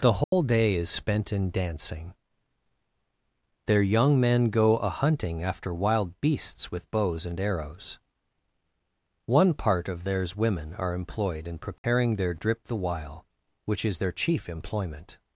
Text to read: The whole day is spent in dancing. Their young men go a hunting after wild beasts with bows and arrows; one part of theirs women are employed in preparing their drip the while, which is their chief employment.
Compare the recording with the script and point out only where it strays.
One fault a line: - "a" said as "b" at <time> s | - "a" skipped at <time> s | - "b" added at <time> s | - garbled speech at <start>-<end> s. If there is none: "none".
none